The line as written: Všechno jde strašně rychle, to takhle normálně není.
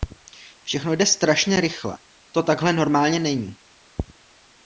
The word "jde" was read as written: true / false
true